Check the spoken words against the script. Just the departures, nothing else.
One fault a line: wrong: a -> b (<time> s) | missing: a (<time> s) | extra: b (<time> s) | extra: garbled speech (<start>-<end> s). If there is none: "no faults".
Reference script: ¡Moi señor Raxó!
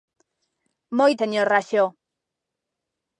no faults